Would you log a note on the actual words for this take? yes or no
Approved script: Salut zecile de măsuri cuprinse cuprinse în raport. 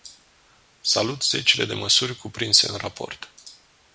yes